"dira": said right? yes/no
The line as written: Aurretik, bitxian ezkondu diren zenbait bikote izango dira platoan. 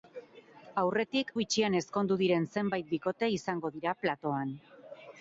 yes